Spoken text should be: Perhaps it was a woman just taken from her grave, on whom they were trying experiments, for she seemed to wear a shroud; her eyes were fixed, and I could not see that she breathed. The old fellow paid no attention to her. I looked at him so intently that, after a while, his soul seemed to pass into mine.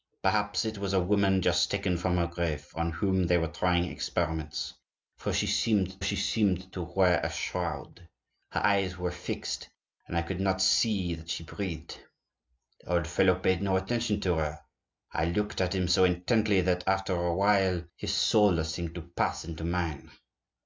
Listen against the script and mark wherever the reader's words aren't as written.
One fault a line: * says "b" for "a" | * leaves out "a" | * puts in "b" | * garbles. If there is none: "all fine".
* puts in "she seemed"